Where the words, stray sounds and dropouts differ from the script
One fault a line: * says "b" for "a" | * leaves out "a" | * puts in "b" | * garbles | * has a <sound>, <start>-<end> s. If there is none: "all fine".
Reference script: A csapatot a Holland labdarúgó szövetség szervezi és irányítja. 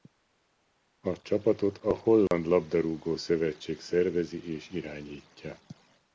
* has a dropout, 2.3-2.3 s